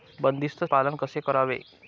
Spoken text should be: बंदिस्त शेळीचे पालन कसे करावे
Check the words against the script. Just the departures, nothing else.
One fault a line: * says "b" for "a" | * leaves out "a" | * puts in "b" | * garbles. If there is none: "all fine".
* leaves out "शेळीचे"